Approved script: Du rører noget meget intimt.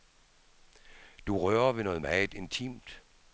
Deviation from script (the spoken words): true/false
true